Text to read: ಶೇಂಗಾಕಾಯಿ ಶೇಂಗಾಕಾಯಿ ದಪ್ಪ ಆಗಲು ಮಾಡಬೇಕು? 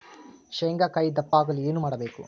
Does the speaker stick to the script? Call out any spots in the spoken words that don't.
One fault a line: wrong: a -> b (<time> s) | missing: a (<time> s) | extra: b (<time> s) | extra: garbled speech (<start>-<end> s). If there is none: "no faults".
missing: ಶೇಂಗಾಕಾಯಿ (1.1 s)
extra: ಏನು (1.6 s)